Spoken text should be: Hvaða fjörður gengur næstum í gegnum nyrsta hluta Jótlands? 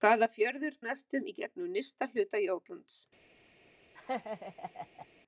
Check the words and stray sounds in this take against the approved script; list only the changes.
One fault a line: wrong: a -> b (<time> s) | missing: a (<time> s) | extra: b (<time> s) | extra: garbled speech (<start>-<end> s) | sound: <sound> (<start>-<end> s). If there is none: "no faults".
missing: gengur (0.8 s)
sound: laugh (3.9-5.1 s)